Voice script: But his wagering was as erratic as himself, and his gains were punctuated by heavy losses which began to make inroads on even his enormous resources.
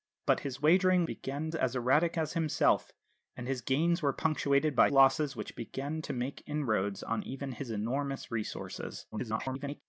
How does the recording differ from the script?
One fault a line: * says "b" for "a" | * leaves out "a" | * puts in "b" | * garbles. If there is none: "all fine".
* says "began" for "was"
* leaves out "heavy"
* garbles